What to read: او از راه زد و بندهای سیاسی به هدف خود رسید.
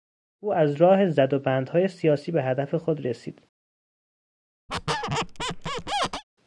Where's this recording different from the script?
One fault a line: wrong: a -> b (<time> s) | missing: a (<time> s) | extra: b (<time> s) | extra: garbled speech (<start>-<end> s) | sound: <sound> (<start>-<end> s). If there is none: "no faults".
sound: squeak (4.7-6.2 s)